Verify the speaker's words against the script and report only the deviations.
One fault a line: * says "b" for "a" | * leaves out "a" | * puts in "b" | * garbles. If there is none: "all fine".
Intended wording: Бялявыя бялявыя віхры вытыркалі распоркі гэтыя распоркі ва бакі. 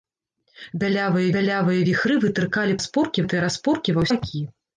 all fine